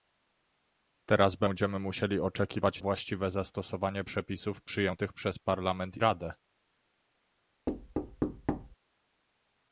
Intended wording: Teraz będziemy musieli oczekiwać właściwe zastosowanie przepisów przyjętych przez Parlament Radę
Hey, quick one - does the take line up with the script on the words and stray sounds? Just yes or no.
no